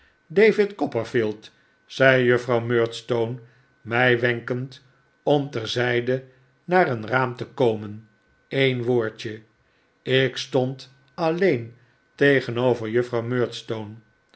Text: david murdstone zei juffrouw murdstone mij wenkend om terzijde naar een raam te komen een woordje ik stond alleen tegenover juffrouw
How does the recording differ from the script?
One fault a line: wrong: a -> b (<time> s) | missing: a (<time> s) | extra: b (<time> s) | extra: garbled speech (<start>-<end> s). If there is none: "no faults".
wrong: murdstone -> copperfield (0.8 s)